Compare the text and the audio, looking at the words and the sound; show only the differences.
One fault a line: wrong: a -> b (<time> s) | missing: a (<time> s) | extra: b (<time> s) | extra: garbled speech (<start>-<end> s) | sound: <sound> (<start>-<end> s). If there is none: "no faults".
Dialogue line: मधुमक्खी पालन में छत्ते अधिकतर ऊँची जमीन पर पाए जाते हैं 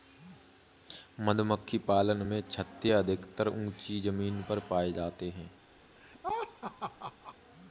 sound: laugh (6.0-7.4 s)